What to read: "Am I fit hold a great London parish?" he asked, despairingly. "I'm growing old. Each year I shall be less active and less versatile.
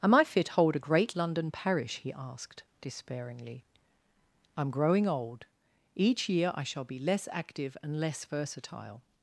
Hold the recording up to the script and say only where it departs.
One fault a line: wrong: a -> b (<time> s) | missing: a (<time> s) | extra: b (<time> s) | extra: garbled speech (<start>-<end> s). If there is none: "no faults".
no faults